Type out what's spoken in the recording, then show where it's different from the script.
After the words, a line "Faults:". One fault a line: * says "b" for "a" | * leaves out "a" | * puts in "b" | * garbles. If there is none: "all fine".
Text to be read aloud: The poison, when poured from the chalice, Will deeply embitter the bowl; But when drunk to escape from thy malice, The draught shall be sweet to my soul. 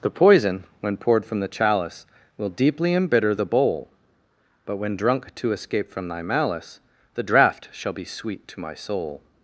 The poison, when poured from the chalice, Will deeply embitter the bowl; But when drunk to escape from thy malice, The draught shall be sweet to my soul.
Faults:
all fine